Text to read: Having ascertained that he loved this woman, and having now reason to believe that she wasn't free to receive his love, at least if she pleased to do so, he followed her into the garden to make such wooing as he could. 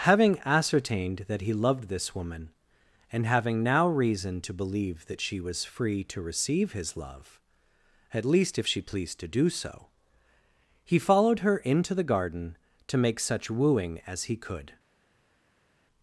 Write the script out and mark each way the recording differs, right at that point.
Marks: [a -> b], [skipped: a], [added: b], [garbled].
Having ascertained that he loved this woman, and having now reason to believe that she [wasn't -> was] free to receive his love, at least if she pleased to do so, he followed her into the garden to make such wooing as he could.